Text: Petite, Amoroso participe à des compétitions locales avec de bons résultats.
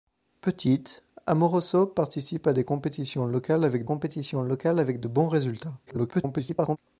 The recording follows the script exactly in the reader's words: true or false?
false